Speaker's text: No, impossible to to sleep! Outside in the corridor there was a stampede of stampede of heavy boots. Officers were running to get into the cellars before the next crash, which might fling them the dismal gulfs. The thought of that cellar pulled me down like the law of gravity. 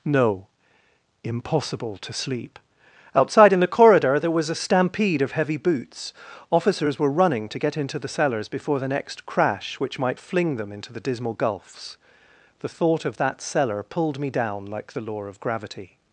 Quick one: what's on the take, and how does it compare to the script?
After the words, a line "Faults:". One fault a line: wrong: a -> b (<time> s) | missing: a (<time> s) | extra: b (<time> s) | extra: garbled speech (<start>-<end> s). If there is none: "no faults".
No, impossible to sleep! Outside in the corridor there was a stampede of heavy boots. Officers were running to get into the cellars before the next crash, which might fling them into the dismal gulfs. The thought of that cellar pulled me down like the law of gravity.
Faults:
missing: to (2.1 s)
missing: stampede of (5.3 s)
extra: into (10.7 s)